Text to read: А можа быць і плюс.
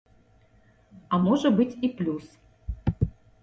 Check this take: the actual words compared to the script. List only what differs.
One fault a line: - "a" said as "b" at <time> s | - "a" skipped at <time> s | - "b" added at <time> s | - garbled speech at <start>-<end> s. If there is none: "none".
none